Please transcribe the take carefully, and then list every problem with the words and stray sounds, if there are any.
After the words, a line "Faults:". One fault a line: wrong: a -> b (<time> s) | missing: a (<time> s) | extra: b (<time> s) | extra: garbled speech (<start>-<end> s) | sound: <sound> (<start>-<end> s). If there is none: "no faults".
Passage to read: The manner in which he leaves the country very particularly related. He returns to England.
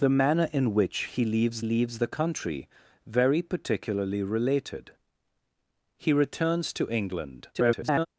The manner in which he leaves leaves the country very particularly related. He returns to England. [garbled]
Faults:
extra: leaves (1.6 s)
extra: garbled speech (7.5-8.1 s)